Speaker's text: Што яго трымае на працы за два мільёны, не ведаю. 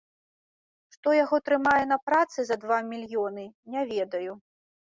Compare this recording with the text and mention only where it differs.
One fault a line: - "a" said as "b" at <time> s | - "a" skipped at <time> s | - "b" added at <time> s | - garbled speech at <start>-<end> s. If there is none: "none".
none